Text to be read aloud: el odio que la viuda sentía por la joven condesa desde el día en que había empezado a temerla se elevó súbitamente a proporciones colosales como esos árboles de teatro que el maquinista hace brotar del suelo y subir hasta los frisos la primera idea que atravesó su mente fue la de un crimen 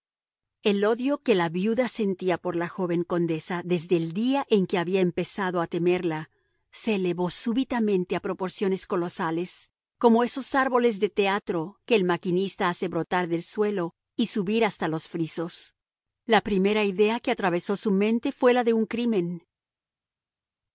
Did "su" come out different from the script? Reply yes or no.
no